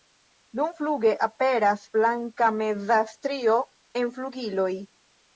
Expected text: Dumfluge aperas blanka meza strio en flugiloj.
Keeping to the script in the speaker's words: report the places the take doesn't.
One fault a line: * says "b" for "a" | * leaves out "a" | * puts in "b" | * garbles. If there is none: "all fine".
all fine